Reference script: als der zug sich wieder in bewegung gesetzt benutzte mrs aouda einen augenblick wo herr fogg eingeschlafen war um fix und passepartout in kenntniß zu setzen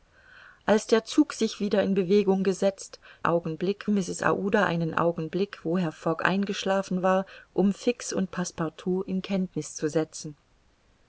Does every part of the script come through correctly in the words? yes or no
no